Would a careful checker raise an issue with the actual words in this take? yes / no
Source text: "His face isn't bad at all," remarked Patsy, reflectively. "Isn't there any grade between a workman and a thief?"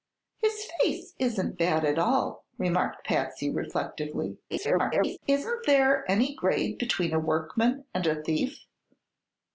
yes